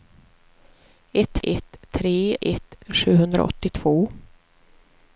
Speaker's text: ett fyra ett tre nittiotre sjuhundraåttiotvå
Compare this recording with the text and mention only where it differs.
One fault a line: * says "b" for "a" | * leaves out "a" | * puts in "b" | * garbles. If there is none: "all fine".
* leaves out "fyra"
* says "ett" for "nittiotre"